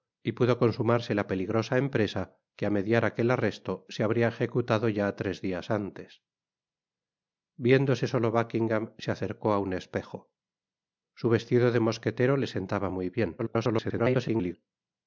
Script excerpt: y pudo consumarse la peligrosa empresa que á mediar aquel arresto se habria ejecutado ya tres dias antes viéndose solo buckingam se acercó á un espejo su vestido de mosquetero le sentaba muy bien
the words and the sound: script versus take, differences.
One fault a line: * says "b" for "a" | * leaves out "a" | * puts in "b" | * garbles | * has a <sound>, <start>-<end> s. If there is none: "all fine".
* garbles